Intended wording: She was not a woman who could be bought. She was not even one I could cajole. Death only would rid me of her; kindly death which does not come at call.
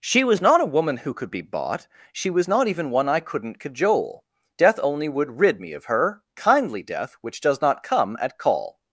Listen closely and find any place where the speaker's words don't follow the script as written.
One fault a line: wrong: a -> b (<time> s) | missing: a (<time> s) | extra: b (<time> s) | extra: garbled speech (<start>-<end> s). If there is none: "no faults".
wrong: could -> couldn't (3.2 s)